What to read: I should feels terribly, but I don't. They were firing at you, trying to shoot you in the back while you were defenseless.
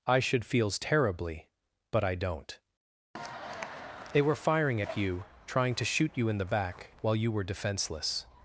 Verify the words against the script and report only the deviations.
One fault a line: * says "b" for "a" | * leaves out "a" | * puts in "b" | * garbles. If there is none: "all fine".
all fine